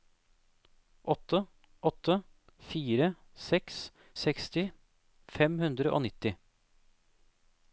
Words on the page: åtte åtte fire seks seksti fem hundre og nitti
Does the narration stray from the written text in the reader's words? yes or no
no